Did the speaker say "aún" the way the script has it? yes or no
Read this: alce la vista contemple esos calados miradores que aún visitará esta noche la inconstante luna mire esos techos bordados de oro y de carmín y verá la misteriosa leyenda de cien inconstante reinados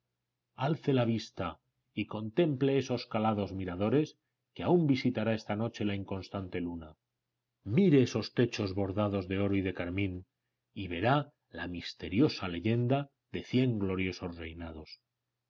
yes